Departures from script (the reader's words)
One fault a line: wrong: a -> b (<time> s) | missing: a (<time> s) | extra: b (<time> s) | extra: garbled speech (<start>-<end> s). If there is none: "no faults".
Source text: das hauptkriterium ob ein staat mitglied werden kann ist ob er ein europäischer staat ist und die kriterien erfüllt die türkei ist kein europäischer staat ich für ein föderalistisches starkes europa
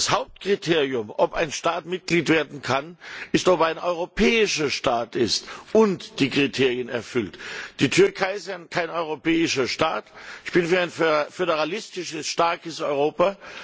extra: bin (10.5 s)